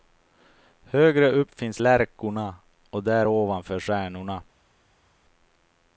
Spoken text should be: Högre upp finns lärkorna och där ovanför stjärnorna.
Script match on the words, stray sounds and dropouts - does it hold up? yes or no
yes